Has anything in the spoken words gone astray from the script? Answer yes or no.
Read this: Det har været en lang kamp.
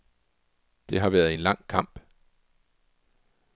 no